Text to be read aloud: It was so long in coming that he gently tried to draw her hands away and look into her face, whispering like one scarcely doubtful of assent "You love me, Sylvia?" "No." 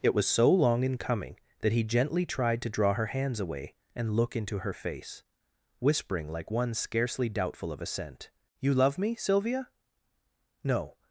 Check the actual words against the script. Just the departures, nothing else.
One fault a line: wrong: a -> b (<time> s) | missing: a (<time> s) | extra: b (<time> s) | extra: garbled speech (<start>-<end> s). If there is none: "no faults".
no faults